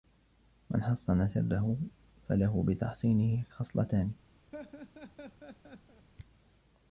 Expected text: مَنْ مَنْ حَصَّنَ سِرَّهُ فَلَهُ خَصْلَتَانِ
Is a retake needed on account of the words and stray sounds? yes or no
yes